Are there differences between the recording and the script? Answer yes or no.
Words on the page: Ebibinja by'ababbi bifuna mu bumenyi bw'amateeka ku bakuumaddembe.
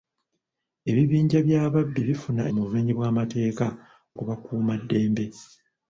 no